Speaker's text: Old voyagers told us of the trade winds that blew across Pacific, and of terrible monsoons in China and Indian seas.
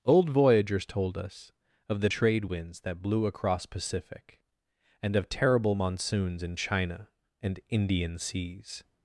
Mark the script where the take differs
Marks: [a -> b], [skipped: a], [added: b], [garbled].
Old voyagers told us of the trade winds that blew across Pacific, and of terrible monsoons in China and Indian seas.